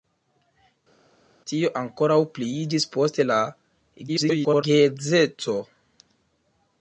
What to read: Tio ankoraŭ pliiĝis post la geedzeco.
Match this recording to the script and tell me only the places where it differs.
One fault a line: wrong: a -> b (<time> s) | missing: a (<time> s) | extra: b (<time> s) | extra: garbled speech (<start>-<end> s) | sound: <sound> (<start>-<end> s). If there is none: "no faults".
extra: garbled speech (4.1-4.6 s)